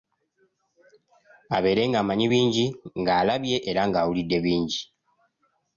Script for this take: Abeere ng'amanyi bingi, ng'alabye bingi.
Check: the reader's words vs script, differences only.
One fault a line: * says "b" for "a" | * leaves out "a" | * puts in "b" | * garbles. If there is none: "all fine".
* puts in "era ng'awulidde"